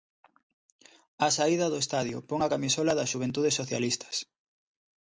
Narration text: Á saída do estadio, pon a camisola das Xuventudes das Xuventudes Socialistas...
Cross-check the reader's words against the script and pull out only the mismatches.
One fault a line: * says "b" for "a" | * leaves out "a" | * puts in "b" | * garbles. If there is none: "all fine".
* leaves out "das Xuventudes"